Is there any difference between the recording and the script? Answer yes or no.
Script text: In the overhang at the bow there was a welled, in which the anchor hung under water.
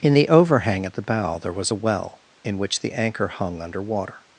yes